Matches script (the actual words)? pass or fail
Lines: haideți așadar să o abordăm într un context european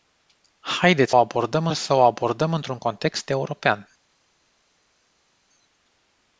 fail